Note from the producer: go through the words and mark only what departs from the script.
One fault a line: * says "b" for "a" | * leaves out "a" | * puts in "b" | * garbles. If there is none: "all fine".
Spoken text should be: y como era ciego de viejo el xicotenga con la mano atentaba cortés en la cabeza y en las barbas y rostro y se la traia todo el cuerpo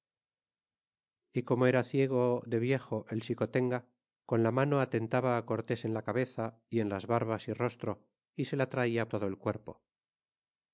all fine